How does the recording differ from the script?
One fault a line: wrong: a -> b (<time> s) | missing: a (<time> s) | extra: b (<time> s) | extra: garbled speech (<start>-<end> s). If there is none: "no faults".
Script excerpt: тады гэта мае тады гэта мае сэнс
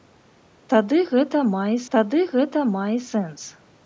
no faults